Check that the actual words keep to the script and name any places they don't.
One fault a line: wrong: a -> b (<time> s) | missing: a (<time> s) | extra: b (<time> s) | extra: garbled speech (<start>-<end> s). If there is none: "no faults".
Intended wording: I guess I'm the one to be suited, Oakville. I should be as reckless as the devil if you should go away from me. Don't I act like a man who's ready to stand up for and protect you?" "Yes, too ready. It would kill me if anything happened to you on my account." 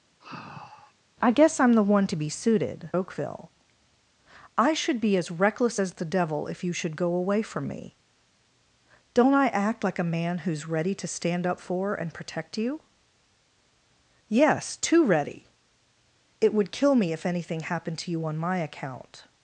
no faults